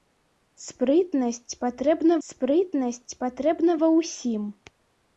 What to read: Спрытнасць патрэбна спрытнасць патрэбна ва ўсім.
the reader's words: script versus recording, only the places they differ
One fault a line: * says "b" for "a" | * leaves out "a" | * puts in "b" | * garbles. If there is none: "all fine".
all fine